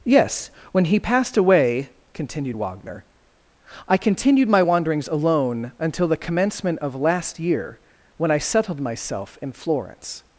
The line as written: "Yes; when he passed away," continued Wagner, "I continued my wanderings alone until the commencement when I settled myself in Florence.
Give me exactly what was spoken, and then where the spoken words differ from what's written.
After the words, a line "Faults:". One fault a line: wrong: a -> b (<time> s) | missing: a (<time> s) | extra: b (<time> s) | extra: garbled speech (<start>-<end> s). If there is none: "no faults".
"Yes; when he passed away," continued Wagner, "I continued my wanderings alone until the commencement of last year, when I settled myself in Florence.
Faults:
extra: of last year (6.8 s)